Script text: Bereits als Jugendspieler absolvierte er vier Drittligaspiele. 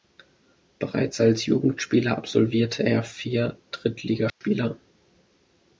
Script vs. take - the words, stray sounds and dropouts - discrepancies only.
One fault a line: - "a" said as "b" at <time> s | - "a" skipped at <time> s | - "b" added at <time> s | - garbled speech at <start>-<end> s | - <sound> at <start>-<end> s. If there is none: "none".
- dropout at 4.3-4.4 s